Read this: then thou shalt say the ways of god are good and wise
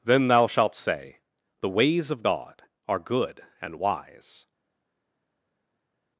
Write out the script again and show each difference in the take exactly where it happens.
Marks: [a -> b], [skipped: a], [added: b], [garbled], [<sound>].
then thou shalt say the ways of god are good and wise